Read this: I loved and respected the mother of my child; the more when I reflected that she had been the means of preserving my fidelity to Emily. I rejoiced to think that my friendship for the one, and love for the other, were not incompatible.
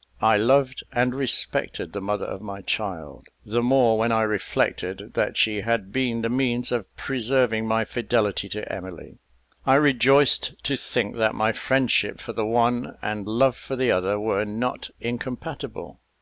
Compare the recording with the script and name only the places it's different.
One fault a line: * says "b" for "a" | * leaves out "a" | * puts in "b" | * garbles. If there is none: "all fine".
all fine